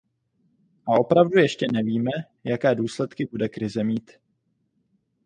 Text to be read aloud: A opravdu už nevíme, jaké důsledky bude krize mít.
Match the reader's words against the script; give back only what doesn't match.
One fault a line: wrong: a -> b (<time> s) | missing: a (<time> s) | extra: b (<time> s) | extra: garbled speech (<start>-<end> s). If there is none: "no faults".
wrong: už -> ještě (1.4 s)